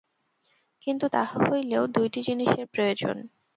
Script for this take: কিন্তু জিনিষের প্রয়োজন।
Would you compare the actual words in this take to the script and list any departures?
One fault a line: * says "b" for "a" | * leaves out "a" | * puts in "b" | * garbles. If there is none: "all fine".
* puts in "তাহা হইলেও দুইটি"